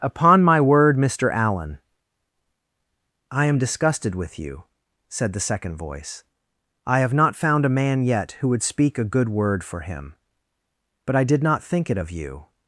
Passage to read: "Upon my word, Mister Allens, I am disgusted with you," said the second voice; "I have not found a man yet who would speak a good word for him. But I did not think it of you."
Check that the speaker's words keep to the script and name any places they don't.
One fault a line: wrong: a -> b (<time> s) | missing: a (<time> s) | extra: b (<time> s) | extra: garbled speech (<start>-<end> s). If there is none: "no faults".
wrong: Allens -> Allen (1.3 s)